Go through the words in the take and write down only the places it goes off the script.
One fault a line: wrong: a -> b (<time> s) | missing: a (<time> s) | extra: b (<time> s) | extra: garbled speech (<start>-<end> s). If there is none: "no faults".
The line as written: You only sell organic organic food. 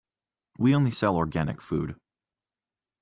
wrong: You -> We (0.6 s)
missing: organic (1.6 s)